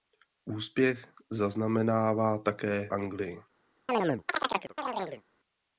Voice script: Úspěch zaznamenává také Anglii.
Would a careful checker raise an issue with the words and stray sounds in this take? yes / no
yes